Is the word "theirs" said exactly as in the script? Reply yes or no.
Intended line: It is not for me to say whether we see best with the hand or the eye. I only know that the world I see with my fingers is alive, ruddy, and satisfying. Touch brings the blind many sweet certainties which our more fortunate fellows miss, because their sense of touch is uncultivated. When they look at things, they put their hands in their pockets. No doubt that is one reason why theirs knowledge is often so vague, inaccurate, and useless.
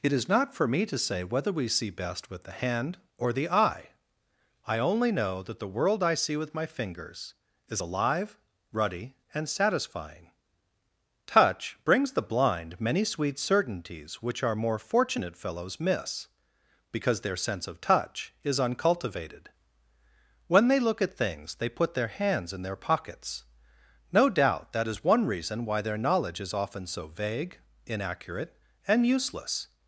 no